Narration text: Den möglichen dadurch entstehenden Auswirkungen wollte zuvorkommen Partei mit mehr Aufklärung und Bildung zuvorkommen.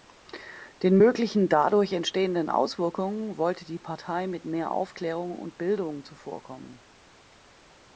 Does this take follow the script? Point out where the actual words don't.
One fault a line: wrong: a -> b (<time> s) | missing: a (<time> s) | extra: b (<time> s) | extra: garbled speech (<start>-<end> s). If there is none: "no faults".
wrong: zuvorkommen -> die (3.6 s)